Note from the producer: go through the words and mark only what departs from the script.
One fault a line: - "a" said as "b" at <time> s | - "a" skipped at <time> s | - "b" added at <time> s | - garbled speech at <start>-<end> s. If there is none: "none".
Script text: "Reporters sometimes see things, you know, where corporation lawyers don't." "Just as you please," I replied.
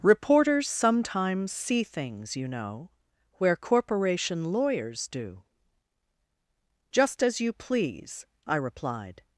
- "don't" said as "do" at 5.1 s